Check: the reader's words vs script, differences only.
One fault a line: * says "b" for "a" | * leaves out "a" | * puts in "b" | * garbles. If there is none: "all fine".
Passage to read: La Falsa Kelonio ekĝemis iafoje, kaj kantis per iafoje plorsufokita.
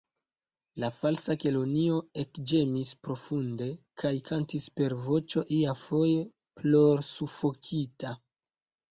* says "profunde" for "iafoje"
* puts in "voĉo"